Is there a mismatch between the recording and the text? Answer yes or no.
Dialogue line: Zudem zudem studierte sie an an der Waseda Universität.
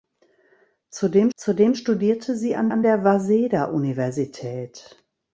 no